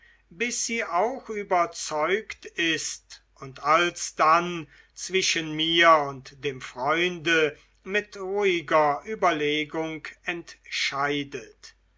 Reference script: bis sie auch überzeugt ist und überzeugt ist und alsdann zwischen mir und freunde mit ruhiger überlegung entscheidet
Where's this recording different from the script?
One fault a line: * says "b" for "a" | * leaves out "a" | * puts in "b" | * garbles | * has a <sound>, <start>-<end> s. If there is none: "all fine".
* leaves out "überzeugt ist und"
* puts in "dem"